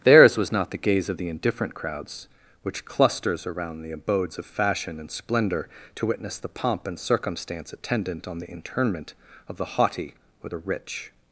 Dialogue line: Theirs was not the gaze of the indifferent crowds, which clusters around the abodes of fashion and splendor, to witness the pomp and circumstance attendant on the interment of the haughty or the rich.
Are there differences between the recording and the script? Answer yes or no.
no